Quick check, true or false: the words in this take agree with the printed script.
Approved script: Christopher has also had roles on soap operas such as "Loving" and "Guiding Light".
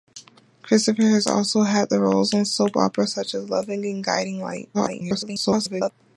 false